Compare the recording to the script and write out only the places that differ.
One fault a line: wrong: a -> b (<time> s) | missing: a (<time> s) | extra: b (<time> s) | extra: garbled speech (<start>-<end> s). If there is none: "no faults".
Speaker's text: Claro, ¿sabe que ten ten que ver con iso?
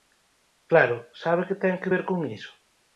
missing: ten (1.8 s)